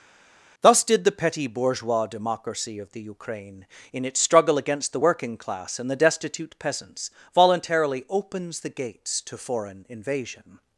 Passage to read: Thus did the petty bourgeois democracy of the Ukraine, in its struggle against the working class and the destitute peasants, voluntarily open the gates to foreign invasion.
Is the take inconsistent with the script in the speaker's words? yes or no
yes